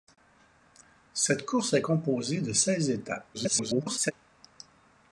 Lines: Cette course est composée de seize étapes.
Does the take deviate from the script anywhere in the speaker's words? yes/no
yes